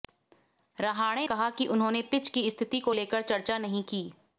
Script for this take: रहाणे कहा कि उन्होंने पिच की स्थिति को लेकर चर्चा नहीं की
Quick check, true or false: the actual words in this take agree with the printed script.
true